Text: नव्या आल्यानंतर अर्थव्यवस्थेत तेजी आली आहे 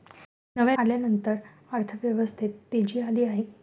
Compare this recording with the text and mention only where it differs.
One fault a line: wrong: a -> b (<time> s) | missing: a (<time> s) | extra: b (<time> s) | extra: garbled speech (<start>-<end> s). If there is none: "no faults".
no faults